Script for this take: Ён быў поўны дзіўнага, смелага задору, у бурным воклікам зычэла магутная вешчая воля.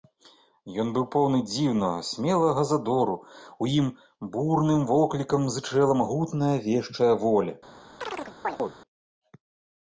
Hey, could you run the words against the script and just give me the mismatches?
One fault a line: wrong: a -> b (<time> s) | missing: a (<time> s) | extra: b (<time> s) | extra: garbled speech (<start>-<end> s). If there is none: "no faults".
extra: ім (3.8 s)